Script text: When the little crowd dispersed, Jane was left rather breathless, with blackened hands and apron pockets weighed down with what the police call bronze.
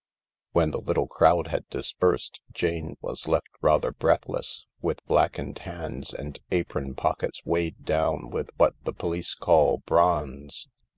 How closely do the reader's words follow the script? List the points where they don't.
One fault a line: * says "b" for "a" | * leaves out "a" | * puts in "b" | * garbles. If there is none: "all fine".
* puts in "had"